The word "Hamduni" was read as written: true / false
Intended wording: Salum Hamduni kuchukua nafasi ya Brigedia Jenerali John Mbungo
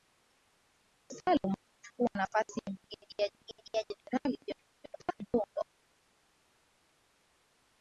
false